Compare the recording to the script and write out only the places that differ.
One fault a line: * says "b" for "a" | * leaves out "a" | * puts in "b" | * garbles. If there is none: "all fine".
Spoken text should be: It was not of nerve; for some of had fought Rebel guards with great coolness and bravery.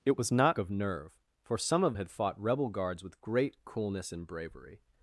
all fine